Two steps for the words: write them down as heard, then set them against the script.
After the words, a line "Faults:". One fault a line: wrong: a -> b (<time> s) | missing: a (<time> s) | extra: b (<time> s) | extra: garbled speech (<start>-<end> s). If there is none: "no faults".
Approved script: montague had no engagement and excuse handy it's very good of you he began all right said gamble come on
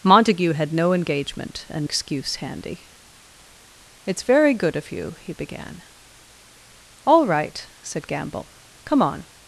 montague had no engagement and excuse handy it's very good of you he began all right said gamble come on
Faults:
no faults